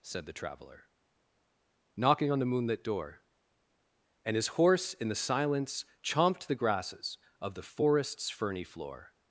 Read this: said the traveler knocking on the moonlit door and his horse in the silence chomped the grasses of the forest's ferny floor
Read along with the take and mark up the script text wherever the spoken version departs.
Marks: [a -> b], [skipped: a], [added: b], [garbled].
said the traveler knocking on the moonlit door and his horse in the silence chomped the grasses of the forest's ferny floor